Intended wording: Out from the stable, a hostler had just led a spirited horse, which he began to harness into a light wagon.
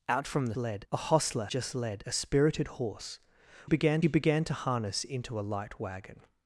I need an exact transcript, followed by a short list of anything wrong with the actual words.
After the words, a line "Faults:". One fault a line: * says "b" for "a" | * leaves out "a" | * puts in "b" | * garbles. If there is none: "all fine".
Out from the led, a hostler just led a spirited horse, began he began to harness into a light wagon.
Faults:
* says "led" for "stable"
* leaves out "had"
* says "began" for "which"